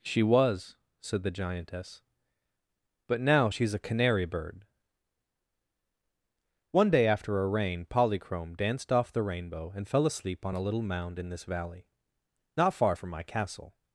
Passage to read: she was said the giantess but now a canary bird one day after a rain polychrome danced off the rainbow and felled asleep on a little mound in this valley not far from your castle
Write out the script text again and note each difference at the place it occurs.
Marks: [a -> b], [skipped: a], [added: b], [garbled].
she was said the giantess but now [added: she's] a canary bird one day after a rain polychrome danced off the rainbow and [felled -> fell] asleep on a little mound in this valley not far from [your -> my] castle